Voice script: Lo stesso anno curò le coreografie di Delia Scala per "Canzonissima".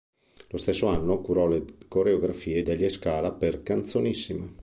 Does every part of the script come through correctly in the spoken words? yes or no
no